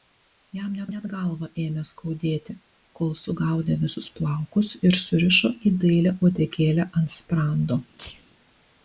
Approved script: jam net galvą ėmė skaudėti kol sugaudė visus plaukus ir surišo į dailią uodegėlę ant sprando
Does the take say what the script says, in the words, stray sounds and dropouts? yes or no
no